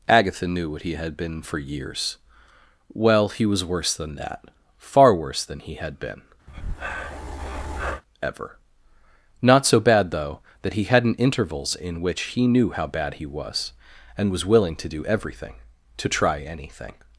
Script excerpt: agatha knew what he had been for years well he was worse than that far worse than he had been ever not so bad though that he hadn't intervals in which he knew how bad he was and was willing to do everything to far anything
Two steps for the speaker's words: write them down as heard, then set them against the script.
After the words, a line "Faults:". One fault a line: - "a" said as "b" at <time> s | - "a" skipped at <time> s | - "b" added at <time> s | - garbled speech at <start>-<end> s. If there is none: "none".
agatha knew what he had been for years well he was worse than that far worse than he had been ever not so bad though that he hadn't intervals in which he knew how bad he was and was willing to do everything to try anything
Faults:
- "far" said as "try" at 16.1 s